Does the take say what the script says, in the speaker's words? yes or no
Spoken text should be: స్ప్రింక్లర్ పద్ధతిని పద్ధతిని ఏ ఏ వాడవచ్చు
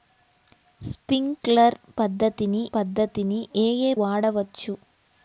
yes